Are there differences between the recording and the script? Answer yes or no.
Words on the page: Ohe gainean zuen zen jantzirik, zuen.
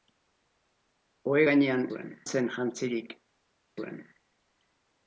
no